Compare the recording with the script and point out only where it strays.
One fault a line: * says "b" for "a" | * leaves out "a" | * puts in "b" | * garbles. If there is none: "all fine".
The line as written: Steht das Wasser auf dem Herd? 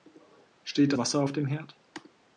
* leaves out "das"